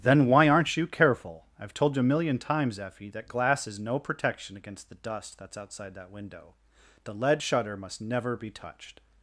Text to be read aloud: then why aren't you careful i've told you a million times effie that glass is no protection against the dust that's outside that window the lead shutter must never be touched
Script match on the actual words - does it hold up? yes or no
yes